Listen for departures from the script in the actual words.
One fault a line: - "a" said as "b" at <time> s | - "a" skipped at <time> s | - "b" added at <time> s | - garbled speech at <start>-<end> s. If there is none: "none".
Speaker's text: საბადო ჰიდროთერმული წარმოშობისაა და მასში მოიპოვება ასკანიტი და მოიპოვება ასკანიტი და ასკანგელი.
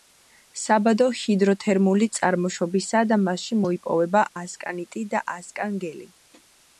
- "მოიპოვება ასკანიტი და" skipped at 5.3 s